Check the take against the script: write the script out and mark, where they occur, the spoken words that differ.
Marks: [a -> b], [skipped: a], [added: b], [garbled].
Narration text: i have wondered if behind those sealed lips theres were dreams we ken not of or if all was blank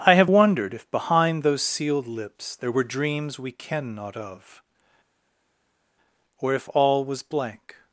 i have wondered if behind those sealed lips [theres -> there] were dreams we ken not of or if all was blank